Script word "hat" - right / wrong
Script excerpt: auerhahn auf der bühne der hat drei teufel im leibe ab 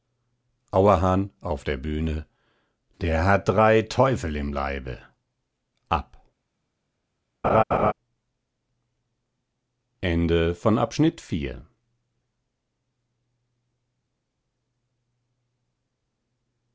right